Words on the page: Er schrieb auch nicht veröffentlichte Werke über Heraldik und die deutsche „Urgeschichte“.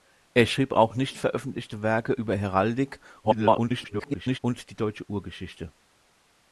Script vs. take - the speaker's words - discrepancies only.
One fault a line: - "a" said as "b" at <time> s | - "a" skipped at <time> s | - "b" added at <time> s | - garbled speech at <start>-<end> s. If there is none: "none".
- garbled speech at 3.2-4.4 s